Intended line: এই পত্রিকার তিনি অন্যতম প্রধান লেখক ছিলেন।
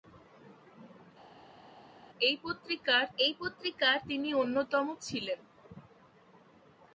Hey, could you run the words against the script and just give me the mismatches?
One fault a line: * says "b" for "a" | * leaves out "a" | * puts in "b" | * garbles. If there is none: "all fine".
* puts in "এই পত্রিকার"
* leaves out "প্রধান লেখক"